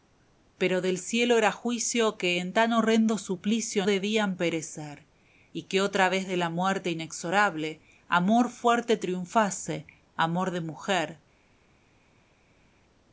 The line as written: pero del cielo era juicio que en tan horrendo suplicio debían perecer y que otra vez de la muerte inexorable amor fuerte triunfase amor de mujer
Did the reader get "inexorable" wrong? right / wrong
right